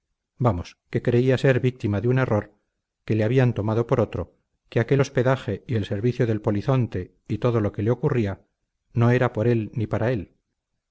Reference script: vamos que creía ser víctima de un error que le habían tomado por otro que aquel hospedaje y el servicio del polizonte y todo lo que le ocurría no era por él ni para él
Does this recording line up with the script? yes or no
yes